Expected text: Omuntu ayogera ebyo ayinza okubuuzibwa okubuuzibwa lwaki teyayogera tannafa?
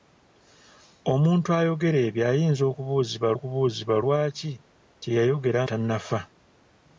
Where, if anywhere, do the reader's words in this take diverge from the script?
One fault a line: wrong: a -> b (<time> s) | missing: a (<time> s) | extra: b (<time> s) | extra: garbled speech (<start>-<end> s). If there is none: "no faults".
no faults